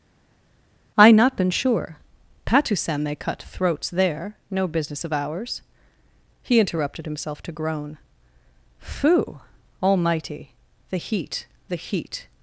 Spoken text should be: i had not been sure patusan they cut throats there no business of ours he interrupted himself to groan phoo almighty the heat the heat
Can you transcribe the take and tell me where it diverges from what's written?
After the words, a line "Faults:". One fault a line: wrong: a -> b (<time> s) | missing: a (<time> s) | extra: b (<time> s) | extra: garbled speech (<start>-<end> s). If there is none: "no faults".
i not been sure patusan they cut throats there no business of ours he interrupted himself to groan phoo almighty the heat the heat
Faults:
missing: had (1.1 s)